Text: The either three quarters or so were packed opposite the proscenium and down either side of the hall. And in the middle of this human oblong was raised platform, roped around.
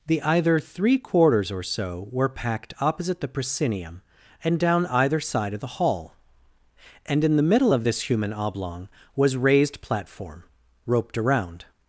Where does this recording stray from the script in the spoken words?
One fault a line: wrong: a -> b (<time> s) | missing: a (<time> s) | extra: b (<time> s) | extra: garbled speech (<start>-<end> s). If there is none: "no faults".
no faults